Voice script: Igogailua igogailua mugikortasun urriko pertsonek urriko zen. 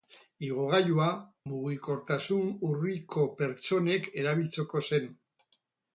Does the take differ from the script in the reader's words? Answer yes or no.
yes